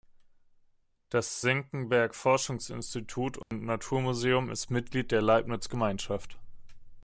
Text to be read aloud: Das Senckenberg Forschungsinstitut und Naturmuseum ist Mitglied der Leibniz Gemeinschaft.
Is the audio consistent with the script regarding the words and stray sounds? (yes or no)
no